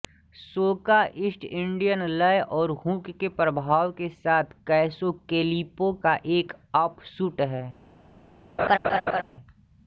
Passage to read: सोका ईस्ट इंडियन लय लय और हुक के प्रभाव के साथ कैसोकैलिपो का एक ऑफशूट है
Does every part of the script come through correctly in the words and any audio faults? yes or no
no